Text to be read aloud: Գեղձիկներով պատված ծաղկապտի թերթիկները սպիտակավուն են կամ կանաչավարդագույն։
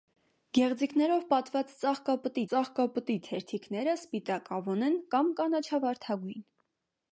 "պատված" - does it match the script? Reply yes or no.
yes